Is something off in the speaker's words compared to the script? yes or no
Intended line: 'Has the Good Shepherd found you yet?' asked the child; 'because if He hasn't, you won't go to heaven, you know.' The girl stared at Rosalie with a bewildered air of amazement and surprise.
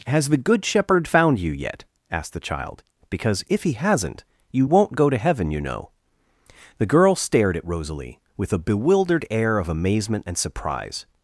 no